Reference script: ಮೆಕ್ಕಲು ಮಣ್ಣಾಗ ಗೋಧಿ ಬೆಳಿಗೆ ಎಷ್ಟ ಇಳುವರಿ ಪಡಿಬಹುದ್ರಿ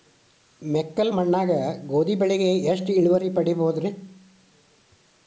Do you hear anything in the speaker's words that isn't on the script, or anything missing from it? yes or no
no